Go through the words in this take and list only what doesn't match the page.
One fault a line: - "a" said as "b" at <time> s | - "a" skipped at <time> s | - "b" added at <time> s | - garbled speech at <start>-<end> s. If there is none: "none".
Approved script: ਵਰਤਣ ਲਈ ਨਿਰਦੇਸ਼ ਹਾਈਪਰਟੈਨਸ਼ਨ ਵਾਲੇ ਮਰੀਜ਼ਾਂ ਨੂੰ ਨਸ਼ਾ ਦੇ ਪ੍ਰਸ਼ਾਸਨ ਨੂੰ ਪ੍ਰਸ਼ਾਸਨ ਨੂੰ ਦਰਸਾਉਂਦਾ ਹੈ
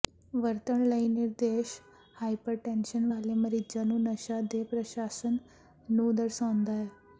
- "ਪ੍ਰਸ਼ਾਸਨ ਨੂੰ" skipped at 6.1 s